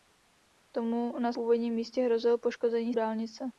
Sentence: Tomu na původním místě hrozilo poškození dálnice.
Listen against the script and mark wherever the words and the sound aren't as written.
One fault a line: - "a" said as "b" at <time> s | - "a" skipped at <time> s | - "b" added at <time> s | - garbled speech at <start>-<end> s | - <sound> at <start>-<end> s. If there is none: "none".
none